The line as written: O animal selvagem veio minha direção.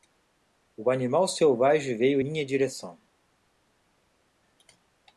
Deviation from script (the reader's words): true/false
false